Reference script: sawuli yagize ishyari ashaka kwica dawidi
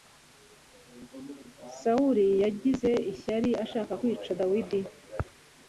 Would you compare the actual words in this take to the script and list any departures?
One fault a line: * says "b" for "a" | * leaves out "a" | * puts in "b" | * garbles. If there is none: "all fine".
all fine